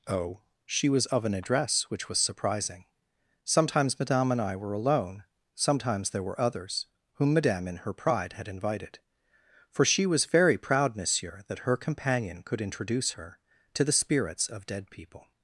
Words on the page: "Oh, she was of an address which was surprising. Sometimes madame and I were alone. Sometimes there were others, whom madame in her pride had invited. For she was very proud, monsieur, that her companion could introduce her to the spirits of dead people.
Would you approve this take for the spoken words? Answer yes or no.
yes